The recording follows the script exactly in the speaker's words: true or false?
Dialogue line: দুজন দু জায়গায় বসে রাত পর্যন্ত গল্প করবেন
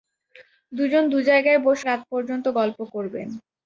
true